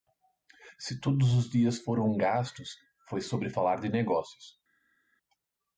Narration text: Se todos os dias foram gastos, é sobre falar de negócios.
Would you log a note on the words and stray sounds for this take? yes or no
yes